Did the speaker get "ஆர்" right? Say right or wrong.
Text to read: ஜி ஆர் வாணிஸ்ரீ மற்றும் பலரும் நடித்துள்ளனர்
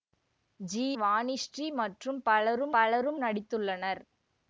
wrong